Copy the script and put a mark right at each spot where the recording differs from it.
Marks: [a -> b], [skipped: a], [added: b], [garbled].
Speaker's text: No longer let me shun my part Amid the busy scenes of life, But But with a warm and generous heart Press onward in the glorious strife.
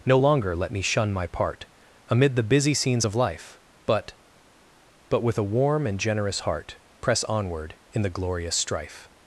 No longer let me shun my part Amid the busy scenes of life, But But with a warm and generous heart Press onward in the glorious strife.